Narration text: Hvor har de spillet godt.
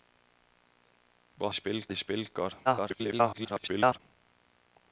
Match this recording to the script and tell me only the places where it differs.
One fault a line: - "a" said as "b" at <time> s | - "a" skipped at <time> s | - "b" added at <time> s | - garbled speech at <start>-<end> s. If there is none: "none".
- "har" said as "spillet" at 1.5 s
- garbled speech at 2.7-4.0 s